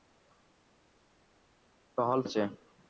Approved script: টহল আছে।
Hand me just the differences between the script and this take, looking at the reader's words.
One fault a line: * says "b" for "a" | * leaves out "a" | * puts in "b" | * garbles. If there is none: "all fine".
all fine